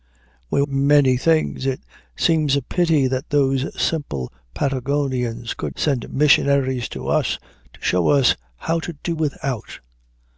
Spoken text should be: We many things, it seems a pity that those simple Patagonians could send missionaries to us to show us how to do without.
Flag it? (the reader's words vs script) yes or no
no